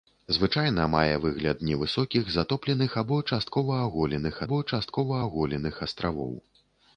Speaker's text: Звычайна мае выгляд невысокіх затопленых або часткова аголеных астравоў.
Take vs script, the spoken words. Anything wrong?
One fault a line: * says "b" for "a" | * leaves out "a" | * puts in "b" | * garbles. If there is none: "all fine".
* puts in "або часткова аголеных"